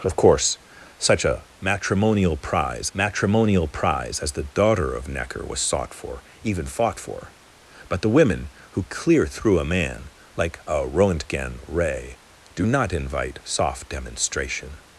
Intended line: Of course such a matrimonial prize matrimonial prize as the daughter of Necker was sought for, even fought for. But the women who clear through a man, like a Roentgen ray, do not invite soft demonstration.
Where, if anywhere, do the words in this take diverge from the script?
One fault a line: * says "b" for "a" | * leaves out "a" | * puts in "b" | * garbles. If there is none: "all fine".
all fine